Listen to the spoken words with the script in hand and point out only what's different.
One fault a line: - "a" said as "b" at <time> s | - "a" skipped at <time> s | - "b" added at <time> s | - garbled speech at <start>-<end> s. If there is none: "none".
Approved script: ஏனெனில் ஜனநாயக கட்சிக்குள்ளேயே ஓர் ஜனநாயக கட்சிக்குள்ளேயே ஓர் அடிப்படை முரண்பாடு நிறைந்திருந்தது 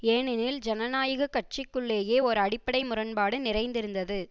- "ஜனநாயக கட்சிக்குள்ளேயே ஓர்" skipped at 2.4 s